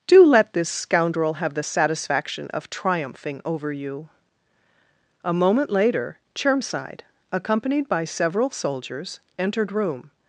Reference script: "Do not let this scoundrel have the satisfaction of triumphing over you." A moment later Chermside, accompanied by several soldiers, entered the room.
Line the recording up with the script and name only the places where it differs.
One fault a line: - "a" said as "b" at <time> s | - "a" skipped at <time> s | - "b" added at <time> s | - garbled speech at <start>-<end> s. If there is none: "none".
- "not" skipped at 0.2 s
- "the" skipped at 9.7 s